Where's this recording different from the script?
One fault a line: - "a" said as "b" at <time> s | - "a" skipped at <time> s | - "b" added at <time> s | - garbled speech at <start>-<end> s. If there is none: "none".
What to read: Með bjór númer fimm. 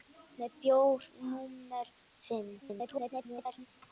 - garbled speech at 2.6-3.7 s